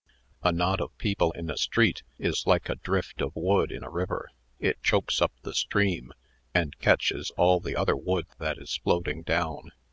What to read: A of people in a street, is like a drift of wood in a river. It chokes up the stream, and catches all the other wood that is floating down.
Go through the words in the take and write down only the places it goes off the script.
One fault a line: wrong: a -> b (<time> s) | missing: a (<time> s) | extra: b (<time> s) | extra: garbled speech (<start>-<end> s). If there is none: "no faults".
extra: knot (0.5 s)